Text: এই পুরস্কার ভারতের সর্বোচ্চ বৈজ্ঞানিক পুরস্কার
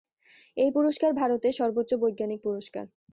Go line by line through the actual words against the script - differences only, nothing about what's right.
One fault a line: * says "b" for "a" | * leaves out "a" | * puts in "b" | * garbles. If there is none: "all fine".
all fine